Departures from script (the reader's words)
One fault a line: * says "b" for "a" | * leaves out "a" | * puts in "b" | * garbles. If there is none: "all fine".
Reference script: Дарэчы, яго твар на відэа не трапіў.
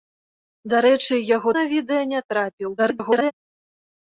* leaves out "твар"
* garbles